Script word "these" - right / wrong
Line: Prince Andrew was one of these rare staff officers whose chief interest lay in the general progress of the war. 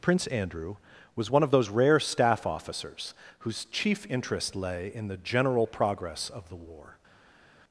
wrong